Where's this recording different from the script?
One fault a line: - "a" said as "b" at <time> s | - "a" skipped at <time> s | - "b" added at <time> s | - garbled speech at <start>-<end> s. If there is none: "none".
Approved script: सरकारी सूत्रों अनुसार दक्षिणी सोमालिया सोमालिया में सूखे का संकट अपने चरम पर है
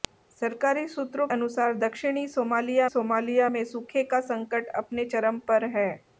none